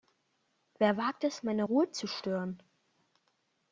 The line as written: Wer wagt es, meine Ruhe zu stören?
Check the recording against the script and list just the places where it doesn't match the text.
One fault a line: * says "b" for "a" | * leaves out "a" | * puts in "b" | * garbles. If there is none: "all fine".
all fine